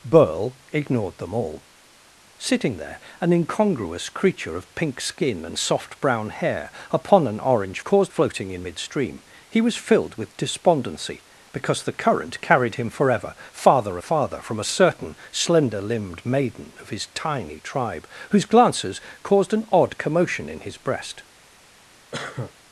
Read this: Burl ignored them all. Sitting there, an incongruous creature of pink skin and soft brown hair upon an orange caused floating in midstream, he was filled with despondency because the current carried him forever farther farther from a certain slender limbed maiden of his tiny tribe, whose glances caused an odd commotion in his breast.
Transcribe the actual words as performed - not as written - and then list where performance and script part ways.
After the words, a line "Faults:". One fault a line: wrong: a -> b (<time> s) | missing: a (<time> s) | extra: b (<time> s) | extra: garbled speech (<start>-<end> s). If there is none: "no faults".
Burl ignored them all. Sitting there, an incongruous creature of pink skin and soft brown hair upon an orange caused floating in midstream, he was filled with despondency because the current carried him forever farther farther from a certain slender limbed maiden of his tiny tribe, whose glances caused an odd commotion in his breast.
Faults:
no faults